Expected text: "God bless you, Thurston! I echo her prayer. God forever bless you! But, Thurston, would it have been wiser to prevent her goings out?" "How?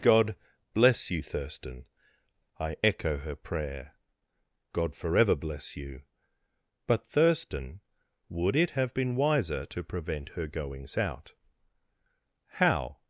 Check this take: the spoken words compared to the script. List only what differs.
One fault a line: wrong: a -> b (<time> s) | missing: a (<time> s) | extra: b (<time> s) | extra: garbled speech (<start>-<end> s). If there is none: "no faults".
no faults